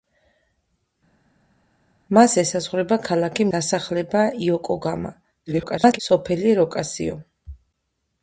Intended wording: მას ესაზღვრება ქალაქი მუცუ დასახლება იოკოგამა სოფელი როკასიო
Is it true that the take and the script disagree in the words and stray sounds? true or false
true